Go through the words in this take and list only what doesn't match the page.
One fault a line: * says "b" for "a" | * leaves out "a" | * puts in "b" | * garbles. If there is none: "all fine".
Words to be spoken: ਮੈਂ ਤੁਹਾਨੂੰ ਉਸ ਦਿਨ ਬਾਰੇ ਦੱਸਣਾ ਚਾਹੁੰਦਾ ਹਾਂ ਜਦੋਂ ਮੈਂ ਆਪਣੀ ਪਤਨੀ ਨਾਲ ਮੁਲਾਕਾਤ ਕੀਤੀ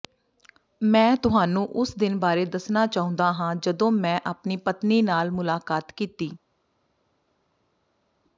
all fine